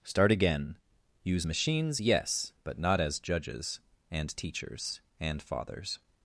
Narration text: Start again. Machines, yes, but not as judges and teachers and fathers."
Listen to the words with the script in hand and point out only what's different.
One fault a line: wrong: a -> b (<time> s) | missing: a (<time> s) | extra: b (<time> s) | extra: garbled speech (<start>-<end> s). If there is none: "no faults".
extra: Use (1.2 s)